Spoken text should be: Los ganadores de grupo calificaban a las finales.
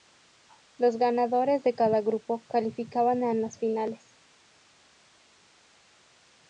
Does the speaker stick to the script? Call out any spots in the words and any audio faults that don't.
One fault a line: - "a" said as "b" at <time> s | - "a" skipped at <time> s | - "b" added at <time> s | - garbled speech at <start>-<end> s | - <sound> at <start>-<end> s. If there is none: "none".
- "cada" added at 1.8 s